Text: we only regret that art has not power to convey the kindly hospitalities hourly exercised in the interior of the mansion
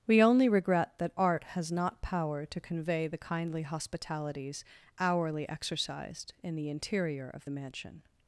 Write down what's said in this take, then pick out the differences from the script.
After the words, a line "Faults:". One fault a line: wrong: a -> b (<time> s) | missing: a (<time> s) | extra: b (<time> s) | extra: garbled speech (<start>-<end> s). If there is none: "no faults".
we only regret that art has not power to convey the kindly hospitalities hourly exercised in the interior of the mansion
Faults:
no faults